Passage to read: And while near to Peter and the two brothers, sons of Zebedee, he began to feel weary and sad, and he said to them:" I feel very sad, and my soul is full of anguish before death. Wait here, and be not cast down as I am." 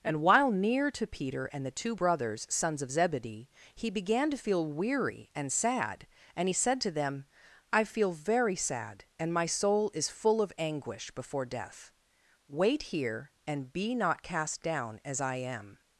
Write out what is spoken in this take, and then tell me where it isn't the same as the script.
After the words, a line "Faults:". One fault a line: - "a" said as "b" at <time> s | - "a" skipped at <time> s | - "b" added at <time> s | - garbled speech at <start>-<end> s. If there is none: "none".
And while near to Peter and the two brothers, sons of Zebedee, he began to feel weary and sad, and he said to them:" I feel very sad, and my soul is full of anguish before death. Wait here, and be not cast down as I am."
Faults:
none